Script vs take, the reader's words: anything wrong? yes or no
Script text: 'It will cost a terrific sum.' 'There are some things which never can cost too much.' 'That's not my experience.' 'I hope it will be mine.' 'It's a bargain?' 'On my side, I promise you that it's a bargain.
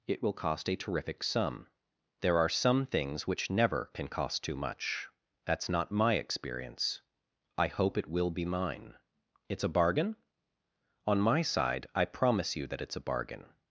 no